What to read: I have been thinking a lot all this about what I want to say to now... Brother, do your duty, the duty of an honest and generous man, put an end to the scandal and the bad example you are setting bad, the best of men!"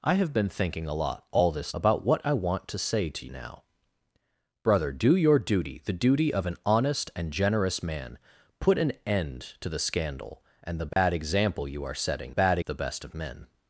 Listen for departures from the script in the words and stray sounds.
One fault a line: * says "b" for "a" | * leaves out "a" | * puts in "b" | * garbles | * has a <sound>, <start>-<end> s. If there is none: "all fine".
* has a dropout, 10.9-11.0 s